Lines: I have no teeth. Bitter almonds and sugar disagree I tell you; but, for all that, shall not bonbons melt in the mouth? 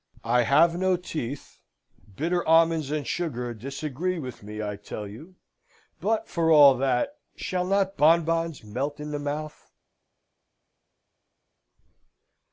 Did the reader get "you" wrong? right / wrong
right